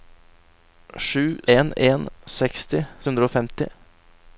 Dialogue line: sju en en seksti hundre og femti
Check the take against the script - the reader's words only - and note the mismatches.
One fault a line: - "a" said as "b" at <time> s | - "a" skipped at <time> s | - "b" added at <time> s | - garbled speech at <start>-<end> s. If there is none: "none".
none